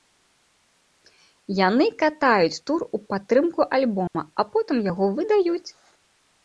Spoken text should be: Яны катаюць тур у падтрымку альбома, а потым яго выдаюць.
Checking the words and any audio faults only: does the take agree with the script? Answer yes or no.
no